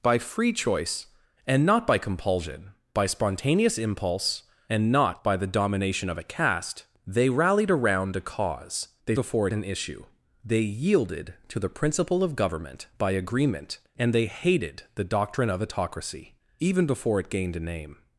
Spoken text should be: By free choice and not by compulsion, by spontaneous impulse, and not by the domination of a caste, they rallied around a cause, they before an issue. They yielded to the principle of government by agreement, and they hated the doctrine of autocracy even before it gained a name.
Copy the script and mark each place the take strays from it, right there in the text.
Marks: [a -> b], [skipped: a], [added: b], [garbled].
By free choice and not by compulsion, by spontaneous impulse, and not by the domination of a caste, they rallied around a cause, they before an issue. They yielded to the principle of government by agreement, and they hated the doctrine of autocracy even before it gained a name.